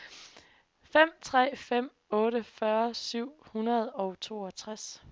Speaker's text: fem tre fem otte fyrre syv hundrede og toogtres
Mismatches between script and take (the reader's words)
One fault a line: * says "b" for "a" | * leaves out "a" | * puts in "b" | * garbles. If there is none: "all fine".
all fine